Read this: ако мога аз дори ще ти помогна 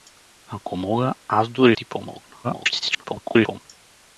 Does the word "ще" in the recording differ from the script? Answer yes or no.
yes